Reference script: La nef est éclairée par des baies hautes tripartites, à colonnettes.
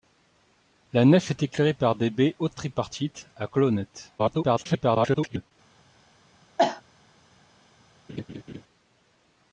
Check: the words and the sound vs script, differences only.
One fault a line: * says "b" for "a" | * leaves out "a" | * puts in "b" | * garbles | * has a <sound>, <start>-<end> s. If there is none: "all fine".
* garbles
* has a cough, 6.6-6.8 s
* has a laugh, 8.1-8.6 s